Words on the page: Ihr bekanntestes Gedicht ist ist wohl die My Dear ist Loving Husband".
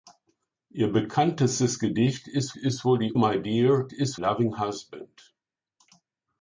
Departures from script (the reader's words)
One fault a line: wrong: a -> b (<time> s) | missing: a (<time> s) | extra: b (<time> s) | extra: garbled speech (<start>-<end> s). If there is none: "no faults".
no faults